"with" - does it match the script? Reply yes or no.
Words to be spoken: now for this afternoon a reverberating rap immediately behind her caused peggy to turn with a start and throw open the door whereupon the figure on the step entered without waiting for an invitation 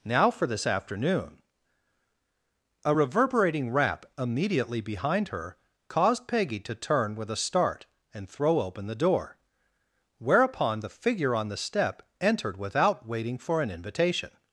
yes